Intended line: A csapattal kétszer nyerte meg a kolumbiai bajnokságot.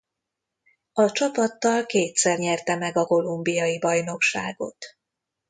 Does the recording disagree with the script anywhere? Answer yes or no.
no